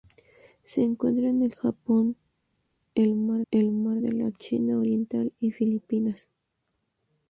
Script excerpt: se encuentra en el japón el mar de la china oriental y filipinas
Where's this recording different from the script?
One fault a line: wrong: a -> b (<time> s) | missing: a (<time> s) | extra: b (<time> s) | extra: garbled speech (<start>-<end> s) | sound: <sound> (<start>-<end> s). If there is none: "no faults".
extra: el mar (3.5 s)